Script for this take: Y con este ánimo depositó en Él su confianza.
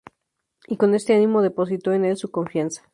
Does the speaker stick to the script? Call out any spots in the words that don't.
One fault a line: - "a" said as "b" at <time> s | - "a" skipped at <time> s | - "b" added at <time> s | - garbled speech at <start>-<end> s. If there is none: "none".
none